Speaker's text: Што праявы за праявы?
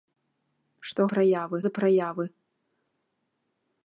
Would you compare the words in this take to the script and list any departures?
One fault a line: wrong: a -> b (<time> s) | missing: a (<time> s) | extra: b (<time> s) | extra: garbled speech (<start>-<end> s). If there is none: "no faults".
no faults